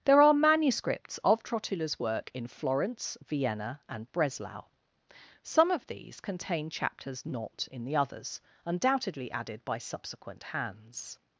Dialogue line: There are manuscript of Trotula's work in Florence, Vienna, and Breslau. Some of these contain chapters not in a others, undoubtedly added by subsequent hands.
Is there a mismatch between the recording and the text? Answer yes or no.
yes